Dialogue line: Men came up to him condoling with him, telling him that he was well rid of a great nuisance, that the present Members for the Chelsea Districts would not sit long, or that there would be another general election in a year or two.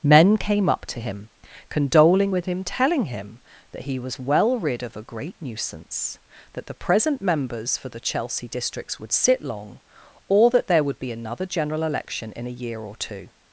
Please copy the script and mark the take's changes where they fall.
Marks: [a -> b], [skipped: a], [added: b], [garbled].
Men came up to him condoling with him, telling him that he was well rid of a great nuisance, that the present Members for the Chelsea Districts would [skipped: not] sit long, or that there would be another general election in a year or two.